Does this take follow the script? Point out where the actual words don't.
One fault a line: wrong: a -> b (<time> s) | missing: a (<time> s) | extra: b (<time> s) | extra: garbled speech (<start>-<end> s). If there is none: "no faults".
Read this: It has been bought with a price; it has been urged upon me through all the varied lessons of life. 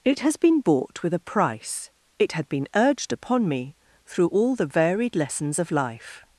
wrong: has -> had (2.3 s)